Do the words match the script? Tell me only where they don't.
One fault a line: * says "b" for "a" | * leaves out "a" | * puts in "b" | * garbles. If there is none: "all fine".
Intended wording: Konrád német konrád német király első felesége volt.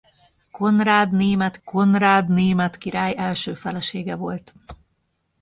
all fine